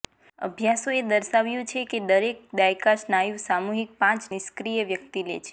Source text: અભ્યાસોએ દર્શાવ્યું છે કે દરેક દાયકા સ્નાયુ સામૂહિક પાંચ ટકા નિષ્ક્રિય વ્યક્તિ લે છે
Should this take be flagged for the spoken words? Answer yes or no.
yes